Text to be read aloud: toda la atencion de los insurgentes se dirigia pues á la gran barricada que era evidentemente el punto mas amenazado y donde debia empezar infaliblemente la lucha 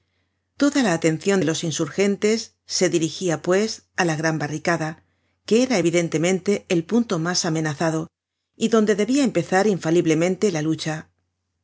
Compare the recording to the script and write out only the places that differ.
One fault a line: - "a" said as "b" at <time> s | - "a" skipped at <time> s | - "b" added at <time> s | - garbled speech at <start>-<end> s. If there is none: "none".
none